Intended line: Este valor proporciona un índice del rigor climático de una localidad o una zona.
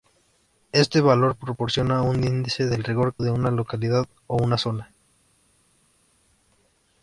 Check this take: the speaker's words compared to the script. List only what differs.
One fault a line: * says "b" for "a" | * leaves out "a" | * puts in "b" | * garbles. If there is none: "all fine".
* leaves out "climático"